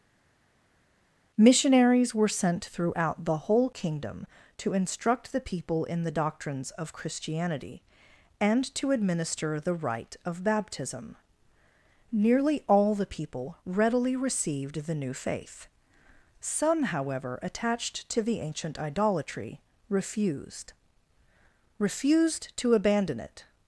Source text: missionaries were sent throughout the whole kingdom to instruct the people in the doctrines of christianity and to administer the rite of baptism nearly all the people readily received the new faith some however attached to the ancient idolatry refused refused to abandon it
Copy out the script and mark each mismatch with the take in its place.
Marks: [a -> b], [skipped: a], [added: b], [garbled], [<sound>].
missionaries were sent throughout the whole kingdom to instruct the people in the doctrines of christianity and to administer the rite of baptism nearly all the people readily received the new faith some however attached to the ancient idolatry refused refused to abandon it